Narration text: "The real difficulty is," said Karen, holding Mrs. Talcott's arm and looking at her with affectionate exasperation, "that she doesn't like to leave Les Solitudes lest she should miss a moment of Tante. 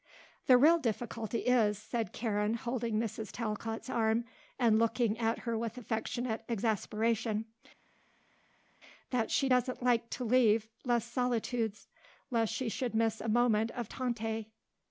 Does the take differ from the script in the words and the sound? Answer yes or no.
no